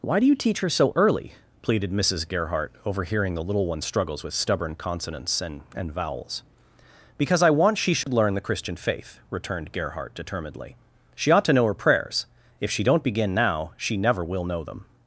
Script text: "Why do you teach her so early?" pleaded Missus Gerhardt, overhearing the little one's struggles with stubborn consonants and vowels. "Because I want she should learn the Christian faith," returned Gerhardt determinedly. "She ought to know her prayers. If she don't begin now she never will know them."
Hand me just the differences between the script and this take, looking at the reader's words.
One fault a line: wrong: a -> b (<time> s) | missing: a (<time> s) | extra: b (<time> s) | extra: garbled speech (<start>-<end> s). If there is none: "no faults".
extra: and (5.8 s)